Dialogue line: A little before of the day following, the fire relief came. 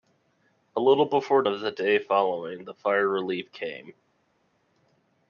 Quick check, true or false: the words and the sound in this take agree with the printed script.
true